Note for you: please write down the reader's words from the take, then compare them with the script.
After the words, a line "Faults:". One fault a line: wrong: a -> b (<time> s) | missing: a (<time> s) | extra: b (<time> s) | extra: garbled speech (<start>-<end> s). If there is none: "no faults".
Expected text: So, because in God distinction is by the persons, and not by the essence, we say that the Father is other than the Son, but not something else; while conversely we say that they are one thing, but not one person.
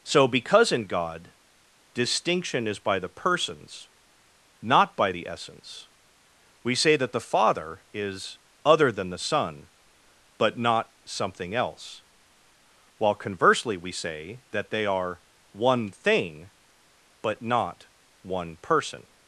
So, because in God distinction is by the persons, not by the essence, we say that the Father is other than the Son, but not something else; while conversely we say that they are one thing, but not one person.
Faults:
missing: and (3.9 s)